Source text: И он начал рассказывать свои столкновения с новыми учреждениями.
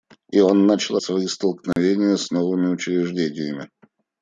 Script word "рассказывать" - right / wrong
wrong